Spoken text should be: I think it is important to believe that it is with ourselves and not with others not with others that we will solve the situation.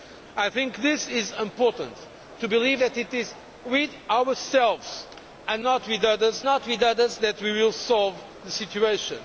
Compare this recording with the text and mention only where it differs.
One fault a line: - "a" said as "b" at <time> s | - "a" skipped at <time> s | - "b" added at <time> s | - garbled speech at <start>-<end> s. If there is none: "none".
none